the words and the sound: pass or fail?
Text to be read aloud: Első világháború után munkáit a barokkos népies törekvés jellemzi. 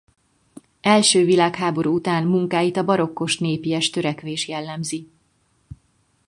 pass